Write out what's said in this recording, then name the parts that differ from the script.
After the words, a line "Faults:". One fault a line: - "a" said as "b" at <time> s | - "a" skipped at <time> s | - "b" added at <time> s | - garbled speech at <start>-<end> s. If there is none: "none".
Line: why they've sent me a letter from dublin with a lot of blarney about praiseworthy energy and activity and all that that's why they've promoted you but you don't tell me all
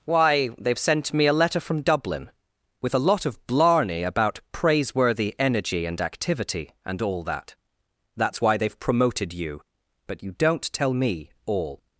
why they've sent me a letter from dublin with a lot of blarney about praiseworthy energy and activity and all that that's why they've promoted you but you don't tell me all
Faults:
none